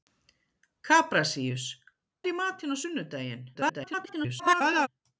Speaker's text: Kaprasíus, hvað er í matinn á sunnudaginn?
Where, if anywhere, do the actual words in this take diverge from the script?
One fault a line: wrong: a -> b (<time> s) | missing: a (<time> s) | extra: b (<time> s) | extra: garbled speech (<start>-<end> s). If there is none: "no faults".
missing: hvað (1.7 s)
extra: garbled speech (3.5-4.9 s)